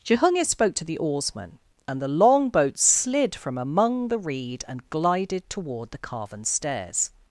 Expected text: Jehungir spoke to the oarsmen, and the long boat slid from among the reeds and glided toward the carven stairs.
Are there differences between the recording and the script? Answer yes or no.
yes